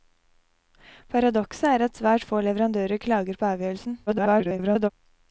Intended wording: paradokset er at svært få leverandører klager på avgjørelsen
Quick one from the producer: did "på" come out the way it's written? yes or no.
yes